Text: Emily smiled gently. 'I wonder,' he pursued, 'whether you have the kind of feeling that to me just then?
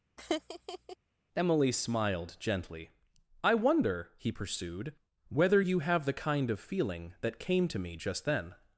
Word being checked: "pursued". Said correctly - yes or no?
yes